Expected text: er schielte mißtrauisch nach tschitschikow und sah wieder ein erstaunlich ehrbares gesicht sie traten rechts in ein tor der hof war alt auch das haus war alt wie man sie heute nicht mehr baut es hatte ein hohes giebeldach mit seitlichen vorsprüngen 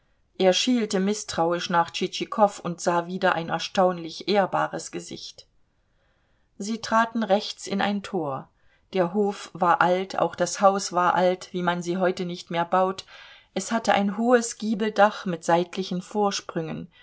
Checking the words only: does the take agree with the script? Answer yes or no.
yes